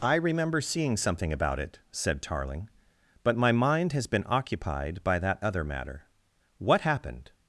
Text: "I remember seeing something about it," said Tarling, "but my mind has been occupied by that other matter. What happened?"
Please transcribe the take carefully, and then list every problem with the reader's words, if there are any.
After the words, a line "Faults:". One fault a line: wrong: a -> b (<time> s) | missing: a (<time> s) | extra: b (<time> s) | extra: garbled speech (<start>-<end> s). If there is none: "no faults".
"I remember seeing something about it," said Tarling, "but my mind has been occupied by that other matter. What happened?"
Faults:
no faults